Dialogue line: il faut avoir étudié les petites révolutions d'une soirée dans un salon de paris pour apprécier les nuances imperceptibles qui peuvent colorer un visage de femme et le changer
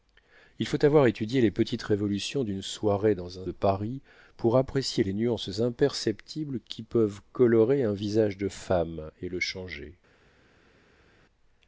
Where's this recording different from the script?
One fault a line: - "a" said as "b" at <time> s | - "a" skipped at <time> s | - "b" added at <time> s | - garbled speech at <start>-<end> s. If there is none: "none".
- "salon" skipped at 3.5 s